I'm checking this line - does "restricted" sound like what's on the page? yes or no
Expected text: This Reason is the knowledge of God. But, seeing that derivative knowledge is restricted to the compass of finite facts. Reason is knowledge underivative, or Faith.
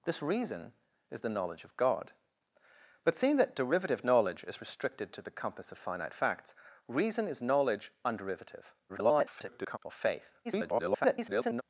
yes